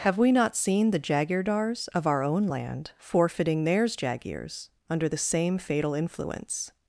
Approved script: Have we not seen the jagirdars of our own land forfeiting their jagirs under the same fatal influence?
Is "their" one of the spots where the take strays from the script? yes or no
yes